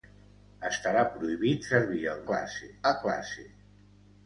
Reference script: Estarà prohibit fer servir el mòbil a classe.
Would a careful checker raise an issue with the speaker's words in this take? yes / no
yes